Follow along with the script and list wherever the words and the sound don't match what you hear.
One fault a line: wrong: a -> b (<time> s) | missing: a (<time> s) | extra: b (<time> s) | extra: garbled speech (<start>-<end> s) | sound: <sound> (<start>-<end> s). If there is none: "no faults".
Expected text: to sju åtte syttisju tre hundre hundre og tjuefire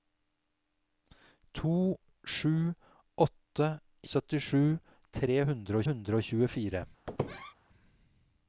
sound: squeak (7.1-7.5 s)